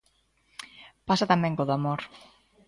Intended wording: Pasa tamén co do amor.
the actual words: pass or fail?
pass